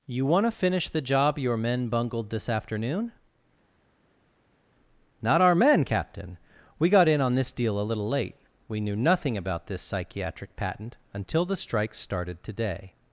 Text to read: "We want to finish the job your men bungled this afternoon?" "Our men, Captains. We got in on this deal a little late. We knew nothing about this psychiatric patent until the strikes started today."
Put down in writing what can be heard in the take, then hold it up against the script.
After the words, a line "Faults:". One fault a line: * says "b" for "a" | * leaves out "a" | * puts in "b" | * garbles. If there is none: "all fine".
"You want to finish the job your men bungled this afternoon?" "Not our men, Captain. We got in on this deal a little late. We knew nothing about this psychiatric patent until the strikes started today."
Faults:
* says "You" for "We"
* puts in "Not"
* says "Captain" for "Captains"